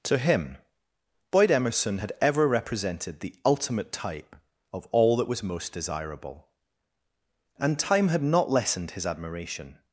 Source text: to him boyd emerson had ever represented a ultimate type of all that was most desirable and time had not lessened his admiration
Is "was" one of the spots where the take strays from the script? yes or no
no